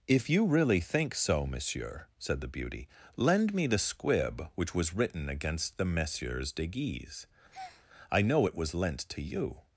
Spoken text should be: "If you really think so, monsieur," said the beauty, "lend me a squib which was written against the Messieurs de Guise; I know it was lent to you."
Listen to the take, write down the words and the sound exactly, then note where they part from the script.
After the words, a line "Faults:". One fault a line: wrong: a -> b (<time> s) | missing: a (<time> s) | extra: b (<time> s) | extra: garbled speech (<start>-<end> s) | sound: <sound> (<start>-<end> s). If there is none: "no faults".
"If you really think so, monsieur," said the beauty, "lend me the squib which was written against the Messieurs de Guise; I know it was lent to you."
Faults:
wrong: a -> the (3.7 s)
sound: breath (7.5-7.9 s)